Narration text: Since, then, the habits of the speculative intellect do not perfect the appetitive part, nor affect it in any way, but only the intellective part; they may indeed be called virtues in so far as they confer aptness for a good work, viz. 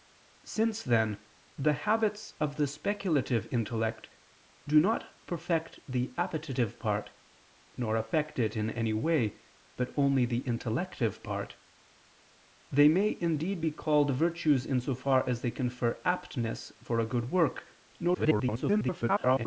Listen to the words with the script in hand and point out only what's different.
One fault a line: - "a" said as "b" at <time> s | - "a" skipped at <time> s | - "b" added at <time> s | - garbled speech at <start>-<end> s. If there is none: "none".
- garbled speech at 18.1-19.5 s